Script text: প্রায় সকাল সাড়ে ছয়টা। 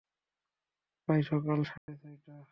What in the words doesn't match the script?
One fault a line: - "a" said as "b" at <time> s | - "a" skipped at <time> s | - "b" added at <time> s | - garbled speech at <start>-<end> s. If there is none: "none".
none